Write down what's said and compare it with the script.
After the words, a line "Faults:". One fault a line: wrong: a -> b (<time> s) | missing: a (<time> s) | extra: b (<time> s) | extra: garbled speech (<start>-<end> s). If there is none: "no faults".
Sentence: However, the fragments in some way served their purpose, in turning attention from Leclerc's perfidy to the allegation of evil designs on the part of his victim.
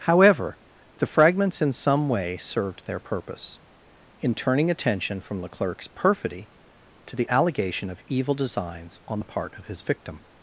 However, the fragments in some way served their purpose, in turning attention from Leclerc's perfidy to the allegation of evil designs on the part of his victim.
Faults:
no faults